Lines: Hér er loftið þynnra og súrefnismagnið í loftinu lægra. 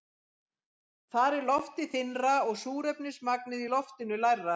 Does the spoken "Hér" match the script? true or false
false